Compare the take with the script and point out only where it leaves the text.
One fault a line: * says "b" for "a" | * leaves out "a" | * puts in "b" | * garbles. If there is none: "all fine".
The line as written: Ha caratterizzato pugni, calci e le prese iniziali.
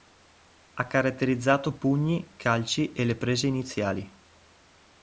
all fine